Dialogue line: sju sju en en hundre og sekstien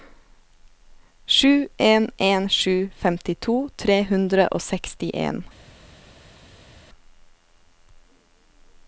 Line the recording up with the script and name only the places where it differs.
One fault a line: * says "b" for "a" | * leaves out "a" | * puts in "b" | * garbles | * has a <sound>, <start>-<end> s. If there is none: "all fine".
* puts in "en en"
* says "femtito tre" for "en en"